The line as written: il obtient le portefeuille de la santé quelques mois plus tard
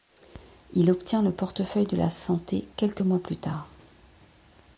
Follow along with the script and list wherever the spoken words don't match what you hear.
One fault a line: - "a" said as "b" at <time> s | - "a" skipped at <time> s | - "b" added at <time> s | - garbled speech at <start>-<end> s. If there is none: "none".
none